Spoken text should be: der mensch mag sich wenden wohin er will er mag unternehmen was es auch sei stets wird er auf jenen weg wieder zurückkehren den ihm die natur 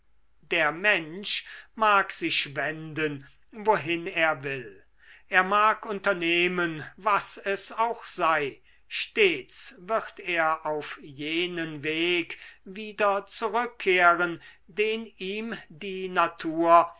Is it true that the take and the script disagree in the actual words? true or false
false